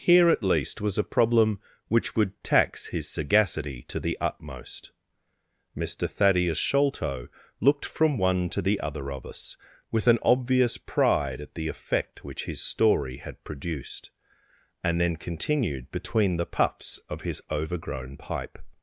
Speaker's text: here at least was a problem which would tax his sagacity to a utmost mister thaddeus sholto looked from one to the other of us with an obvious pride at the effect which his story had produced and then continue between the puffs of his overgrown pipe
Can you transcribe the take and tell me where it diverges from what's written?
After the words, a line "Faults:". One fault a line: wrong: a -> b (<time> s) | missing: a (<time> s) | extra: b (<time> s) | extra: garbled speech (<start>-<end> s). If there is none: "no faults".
here at least was a problem which would tax his sagacity to the utmost mister thaddeus sholto looked from one to the other of us with an obvious pride at the effect which his story had produced and then continued between the puffs of his overgrown pipe
Faults:
wrong: a -> the (4.0 s)
wrong: continue -> continued (15.2 s)